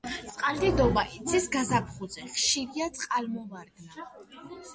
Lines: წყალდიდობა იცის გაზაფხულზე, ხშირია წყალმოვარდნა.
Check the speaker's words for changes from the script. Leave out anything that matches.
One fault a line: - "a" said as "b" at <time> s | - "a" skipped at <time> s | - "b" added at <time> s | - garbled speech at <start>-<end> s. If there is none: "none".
none